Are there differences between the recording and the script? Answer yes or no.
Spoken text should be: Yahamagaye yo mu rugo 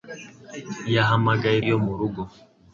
no